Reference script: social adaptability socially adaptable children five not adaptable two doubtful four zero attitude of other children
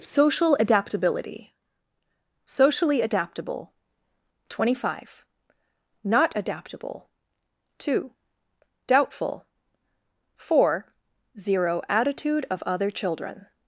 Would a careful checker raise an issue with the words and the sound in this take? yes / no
yes